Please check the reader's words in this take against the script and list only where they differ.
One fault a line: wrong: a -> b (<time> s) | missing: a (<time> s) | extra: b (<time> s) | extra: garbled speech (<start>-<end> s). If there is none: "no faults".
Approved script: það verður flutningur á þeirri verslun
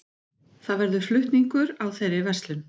no faults